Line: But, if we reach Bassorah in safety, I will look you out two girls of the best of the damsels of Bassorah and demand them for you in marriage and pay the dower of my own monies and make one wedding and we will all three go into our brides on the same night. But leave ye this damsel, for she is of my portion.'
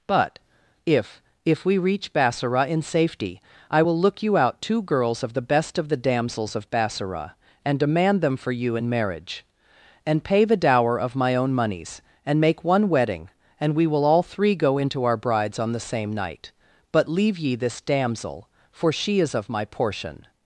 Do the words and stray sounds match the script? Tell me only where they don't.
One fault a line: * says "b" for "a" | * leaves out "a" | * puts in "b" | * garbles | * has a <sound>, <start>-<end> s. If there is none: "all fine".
* puts in "if"